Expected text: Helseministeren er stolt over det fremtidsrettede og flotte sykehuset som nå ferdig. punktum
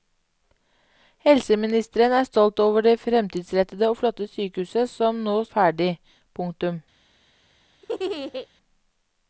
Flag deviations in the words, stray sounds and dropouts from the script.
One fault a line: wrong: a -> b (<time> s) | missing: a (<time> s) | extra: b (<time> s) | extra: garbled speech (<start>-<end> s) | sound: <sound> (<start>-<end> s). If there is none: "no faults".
sound: laugh (7.8-8.5 s)